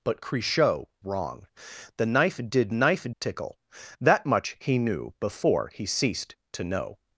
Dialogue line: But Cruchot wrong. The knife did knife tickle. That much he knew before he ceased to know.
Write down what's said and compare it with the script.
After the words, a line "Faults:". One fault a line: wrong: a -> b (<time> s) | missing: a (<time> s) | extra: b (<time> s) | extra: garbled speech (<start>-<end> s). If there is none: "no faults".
But Cruchot wrong. The knife did knife tickle. That much he knew before he ceased to know.
Faults:
no faults